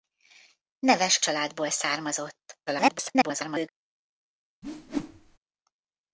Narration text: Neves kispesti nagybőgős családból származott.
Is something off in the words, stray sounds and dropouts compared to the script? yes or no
yes